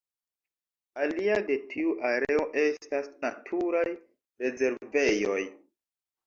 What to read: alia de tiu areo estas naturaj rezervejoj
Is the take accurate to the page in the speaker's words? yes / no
yes